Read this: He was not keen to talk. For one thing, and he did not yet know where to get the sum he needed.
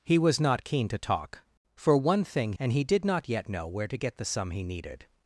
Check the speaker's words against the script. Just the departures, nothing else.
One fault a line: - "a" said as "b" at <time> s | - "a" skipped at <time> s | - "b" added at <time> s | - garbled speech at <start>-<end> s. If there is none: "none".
none